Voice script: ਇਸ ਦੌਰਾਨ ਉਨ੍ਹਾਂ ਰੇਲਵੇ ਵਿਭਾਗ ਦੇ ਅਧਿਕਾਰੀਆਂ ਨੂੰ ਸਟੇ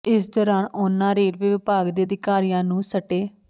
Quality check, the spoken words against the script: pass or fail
pass